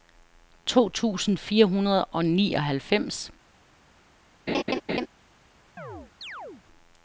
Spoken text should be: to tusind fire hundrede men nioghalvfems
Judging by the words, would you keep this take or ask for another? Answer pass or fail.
fail